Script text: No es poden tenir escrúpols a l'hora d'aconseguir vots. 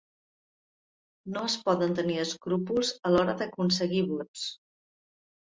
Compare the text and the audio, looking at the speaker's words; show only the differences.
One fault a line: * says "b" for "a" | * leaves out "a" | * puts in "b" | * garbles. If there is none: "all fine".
all fine